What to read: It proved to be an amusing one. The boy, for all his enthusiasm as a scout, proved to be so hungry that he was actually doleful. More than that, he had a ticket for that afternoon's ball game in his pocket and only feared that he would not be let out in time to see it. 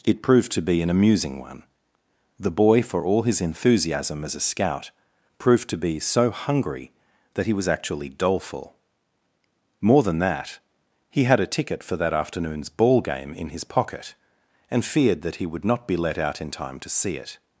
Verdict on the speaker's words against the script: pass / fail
fail